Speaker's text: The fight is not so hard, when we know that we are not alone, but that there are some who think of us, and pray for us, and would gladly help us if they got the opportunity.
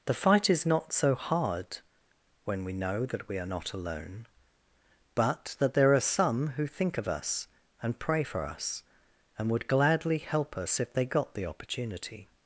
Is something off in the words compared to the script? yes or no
no